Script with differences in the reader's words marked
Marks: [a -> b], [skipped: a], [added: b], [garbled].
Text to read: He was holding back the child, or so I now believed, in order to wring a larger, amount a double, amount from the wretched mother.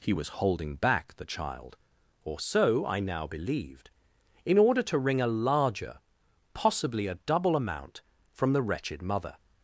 He was holding back the child, or so I now believed, in order to wring a larger, [amount -> possibly] a double, amount from the wretched mother.